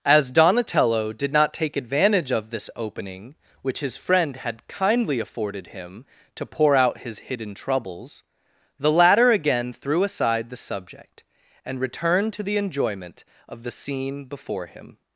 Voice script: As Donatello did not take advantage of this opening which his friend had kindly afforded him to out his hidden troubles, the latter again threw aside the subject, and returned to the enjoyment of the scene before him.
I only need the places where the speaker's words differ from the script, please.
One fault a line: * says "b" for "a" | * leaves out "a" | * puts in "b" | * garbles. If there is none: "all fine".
* puts in "pour"